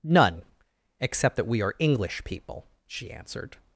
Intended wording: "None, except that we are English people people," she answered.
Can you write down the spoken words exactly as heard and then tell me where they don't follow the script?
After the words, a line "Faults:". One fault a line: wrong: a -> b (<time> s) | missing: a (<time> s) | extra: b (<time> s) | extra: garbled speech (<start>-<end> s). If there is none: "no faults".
"None, except that we are English people," she answered.
Faults:
missing: people (2.7 s)